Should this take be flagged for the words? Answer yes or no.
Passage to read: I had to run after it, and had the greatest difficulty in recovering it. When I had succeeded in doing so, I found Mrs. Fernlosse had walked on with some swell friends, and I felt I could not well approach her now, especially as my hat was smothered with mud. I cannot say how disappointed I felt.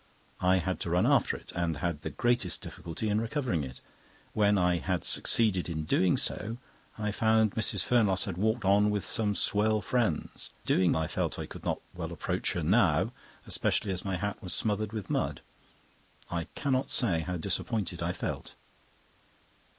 yes